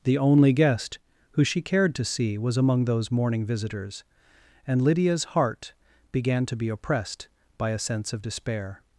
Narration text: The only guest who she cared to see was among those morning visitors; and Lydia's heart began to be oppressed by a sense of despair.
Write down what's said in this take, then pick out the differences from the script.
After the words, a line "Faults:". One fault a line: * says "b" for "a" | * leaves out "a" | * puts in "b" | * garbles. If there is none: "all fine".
The only guest who she cared to see was among those morning visitors; and Lydia's heart began to be oppressed by a sense of despair.
Faults:
all fine